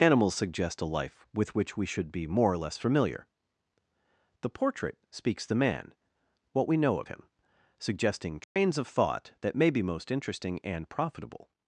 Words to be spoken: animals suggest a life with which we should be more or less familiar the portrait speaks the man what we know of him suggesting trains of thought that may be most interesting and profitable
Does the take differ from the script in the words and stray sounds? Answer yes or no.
yes